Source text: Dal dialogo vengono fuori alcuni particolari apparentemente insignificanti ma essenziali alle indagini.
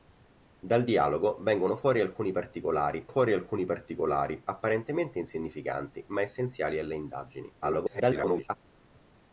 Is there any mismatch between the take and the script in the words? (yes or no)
yes